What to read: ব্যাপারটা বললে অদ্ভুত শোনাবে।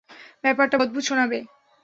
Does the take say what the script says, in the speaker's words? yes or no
no